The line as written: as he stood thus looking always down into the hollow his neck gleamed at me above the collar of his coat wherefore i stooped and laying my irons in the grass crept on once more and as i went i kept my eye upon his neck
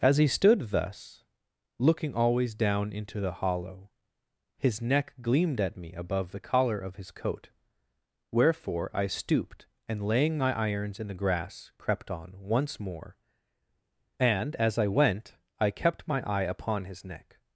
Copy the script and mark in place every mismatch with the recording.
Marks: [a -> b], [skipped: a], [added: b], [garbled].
as he stood thus looking always down into the hollow his neck gleamed at me above the collar of his coat wherefore i stooped and laying my irons in the grass crept on once more and as i went i kept my eye upon his neck